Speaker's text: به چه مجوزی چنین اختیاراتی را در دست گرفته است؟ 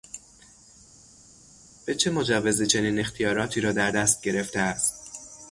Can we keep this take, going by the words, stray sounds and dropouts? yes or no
yes